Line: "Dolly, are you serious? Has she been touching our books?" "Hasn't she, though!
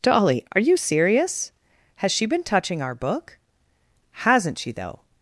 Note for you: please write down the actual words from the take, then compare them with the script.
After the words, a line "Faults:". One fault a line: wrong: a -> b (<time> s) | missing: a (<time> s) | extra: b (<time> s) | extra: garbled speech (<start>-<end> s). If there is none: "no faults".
"Dolly, are you serious? Has she been touching our book?" "Hasn't she, though!
Faults:
wrong: books -> book (2.9 s)